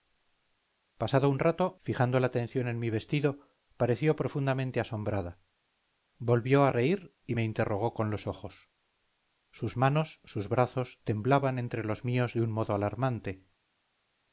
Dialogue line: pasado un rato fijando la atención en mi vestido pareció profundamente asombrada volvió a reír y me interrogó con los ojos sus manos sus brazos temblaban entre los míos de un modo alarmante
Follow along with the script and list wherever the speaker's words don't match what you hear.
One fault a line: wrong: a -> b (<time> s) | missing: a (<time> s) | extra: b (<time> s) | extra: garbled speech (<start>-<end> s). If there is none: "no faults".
no faults